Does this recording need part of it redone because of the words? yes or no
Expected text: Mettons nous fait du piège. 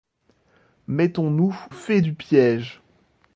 no